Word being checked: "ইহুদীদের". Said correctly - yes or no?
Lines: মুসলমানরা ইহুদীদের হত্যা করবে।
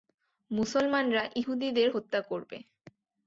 yes